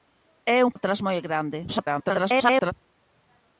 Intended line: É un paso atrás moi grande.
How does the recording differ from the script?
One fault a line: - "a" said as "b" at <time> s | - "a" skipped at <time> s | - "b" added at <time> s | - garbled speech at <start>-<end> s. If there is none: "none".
- "paso" skipped at 0.7 s
- garbled speech at 1.7-2.7 s